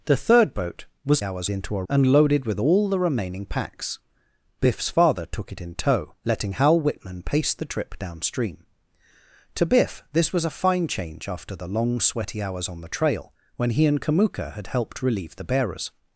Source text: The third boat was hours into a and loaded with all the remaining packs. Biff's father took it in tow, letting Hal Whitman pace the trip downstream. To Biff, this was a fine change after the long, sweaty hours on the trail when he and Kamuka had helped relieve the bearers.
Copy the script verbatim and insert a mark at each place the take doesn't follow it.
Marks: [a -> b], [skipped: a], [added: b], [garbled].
The third boat was hours into a and loaded with all the remaining packs. Biff's father took it in tow, letting Hal Whitman pace the trip downstream. To Biff, this was a fine change after the long, sweaty hours on the trail when he and Kamuka had helped relieve the bearers.